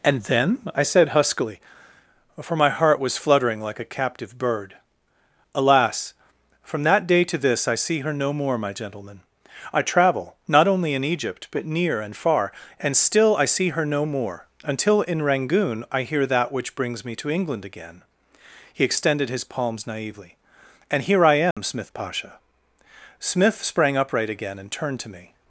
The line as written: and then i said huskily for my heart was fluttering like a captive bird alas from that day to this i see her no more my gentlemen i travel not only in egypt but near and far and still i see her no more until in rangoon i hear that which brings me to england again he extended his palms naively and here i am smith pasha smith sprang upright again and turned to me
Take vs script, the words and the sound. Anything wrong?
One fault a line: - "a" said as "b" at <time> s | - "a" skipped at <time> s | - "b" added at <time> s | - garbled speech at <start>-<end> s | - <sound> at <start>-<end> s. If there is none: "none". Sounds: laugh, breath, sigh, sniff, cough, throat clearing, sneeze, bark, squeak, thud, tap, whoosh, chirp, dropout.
- dropout at 21.5-21.6 s